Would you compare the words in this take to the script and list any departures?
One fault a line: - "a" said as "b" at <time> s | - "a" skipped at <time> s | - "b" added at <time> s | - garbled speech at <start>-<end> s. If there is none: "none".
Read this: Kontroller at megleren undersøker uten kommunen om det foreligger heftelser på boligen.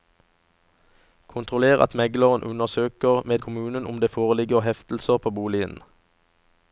- "uten" said as "med" at 3.2 s